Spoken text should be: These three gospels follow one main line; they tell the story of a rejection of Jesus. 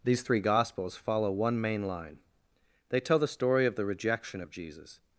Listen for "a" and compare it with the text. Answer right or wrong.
wrong